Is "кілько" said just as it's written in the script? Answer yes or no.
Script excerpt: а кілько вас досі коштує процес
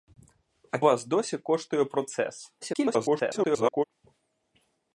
no